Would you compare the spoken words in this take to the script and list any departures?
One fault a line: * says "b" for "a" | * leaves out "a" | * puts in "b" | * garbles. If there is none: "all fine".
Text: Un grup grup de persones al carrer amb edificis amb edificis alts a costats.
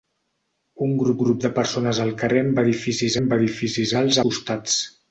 all fine